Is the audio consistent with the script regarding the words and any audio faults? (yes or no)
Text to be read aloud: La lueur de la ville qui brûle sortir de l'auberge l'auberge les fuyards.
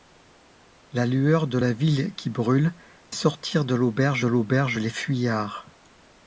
yes